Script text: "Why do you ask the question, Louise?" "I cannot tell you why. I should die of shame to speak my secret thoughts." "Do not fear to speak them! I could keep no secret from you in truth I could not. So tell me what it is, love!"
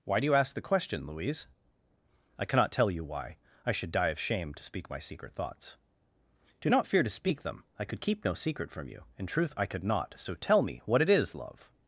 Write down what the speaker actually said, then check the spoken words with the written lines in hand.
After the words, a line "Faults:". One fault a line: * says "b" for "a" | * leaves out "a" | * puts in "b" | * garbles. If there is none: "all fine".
"Why do you ask the question, Louise?" "I cannot tell you why. I should die of shame to speak my secret thoughts." "Do not fear to speak them! I could keep no secret from you in truth I could not. So tell me what it is, love!"
Faults:
all fine